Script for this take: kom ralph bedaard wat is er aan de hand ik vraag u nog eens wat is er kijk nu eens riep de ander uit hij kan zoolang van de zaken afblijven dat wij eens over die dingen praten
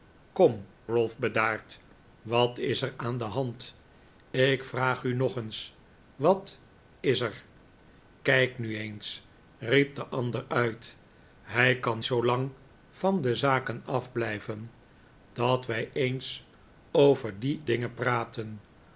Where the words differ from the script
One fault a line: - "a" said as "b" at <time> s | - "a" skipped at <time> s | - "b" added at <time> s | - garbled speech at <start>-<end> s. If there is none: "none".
none